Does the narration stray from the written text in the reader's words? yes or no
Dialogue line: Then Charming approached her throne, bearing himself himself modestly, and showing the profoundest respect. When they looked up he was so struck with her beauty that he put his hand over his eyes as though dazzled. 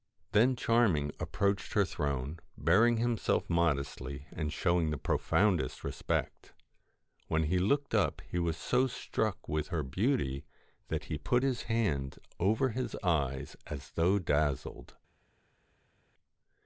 yes